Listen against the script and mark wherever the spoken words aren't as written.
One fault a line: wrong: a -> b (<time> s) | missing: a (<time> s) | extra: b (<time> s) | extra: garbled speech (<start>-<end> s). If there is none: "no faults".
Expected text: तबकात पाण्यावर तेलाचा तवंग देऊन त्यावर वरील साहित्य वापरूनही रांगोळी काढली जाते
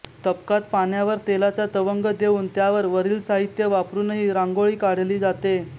no faults